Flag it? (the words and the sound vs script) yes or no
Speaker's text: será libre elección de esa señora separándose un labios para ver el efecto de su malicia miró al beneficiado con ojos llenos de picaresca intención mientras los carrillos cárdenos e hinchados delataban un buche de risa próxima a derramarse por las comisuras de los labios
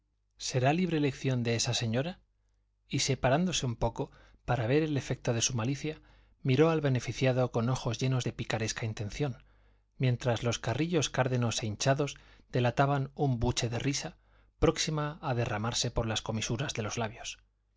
yes